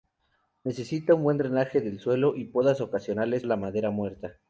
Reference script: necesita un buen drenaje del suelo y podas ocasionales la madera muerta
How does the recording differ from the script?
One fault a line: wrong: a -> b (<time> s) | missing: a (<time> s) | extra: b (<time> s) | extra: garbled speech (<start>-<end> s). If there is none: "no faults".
no faults